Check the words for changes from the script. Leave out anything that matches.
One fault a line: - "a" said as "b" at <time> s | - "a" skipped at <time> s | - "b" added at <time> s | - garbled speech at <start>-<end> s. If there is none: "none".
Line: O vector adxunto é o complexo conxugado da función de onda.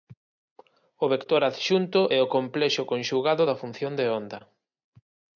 none